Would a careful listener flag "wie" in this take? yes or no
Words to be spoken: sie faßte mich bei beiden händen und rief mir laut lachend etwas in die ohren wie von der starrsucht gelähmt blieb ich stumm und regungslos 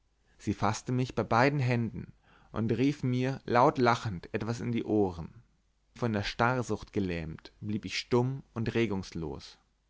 yes